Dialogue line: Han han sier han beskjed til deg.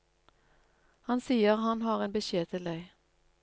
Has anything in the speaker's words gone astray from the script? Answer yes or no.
yes